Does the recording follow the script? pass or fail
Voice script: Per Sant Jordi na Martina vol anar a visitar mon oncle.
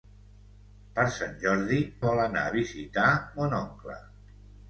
fail